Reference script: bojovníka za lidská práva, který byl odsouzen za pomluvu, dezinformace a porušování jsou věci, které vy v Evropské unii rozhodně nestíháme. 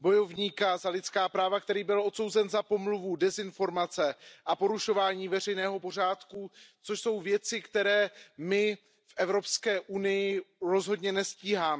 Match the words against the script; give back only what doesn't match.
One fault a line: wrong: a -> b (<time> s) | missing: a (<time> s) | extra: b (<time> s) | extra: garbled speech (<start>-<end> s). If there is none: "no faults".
extra: veřejného pořádku což (5.3 s)
wrong: vy -> my (8.4 s)